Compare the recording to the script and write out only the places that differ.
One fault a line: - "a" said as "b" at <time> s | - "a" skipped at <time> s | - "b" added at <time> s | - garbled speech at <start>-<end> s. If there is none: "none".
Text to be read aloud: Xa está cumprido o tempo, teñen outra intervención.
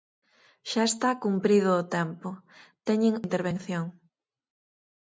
- "outra" skipped at 3.1 s